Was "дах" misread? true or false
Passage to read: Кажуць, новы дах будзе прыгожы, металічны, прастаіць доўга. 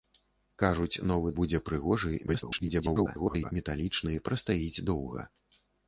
true